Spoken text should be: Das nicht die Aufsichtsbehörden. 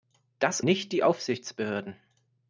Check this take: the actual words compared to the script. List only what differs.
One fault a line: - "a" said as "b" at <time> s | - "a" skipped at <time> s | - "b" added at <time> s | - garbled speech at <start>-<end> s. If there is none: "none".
none